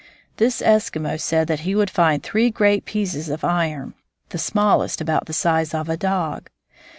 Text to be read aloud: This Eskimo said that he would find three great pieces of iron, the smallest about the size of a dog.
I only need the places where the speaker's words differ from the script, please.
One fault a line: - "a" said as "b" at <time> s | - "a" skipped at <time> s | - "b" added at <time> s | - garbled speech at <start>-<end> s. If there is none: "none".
none